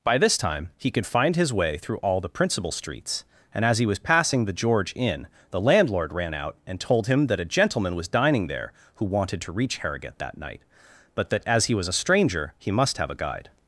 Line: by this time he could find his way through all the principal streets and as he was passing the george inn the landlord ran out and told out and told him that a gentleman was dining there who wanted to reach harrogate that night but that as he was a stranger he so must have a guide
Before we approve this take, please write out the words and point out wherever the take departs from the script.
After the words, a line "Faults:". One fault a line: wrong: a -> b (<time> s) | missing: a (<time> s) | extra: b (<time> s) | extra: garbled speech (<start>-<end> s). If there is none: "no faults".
by this time he could find his way through all the principal streets and as he was passing the george inn the landlord ran out and told him that a gentleman was dining there who wanted to reach harrogate that night but that as he was a stranger he must have a guide
Faults:
missing: out and told (7.1 s)
missing: so (12.7 s)